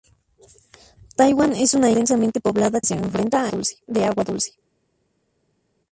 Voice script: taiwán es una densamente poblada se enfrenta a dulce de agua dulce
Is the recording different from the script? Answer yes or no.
no